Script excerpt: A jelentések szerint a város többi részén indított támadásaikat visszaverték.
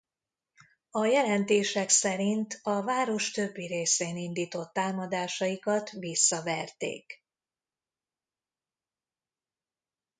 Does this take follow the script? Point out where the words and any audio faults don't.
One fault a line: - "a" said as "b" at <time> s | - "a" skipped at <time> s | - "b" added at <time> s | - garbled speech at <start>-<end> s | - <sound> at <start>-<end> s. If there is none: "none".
none